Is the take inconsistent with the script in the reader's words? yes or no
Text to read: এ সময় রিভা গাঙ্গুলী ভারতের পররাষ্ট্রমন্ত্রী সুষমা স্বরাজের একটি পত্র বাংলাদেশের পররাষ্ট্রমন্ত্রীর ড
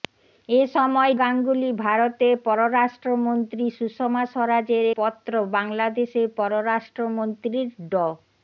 yes